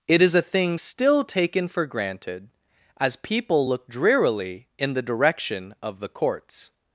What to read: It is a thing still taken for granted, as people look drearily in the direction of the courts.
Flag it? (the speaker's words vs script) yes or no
no